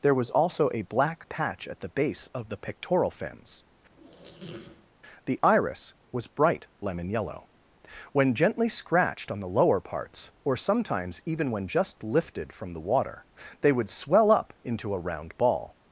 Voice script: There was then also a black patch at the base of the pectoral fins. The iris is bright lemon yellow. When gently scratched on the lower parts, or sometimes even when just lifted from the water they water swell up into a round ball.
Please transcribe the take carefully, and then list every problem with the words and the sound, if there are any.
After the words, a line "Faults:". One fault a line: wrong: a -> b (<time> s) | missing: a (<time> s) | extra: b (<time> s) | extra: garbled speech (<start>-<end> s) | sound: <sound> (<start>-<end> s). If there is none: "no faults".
There was also a black patch at the base of the pectoral fins. The iris was bright lemon yellow. When gently scratched on the lower parts, or sometimes even when just lifted from the water they would swell up into a round ball.
Faults:
missing: then (0.3 s)
sound: squeak (3.9-4.9 s)
wrong: is -> was (6.1 s)
wrong: water -> would (13.7 s)